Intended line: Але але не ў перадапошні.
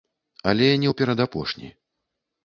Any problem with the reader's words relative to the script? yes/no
yes